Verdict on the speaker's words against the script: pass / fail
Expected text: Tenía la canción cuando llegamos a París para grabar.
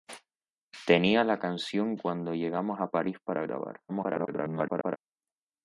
fail